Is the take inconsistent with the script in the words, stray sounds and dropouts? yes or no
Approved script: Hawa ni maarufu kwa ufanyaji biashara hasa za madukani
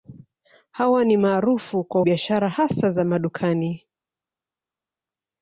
yes